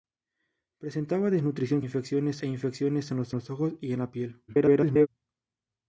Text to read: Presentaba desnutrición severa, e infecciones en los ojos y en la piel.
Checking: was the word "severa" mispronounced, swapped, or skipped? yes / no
yes